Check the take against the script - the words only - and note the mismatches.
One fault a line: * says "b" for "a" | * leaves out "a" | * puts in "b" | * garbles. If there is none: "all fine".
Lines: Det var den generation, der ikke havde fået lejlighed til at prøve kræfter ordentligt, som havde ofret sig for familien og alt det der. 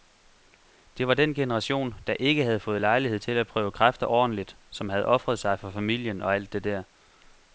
all fine